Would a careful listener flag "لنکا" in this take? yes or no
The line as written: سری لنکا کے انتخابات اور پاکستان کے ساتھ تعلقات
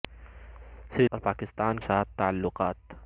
yes